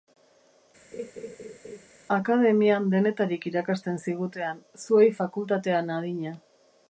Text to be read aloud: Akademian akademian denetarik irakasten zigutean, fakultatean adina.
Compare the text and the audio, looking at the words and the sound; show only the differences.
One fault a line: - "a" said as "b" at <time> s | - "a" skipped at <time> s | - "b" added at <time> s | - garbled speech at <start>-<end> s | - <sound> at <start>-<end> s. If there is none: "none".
- laugh at 0.9-1.9 s
- "akademian" skipped at 2.9 s
- "zuei" added at 4.8 s